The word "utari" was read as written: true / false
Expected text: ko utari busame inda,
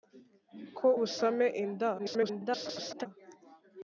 false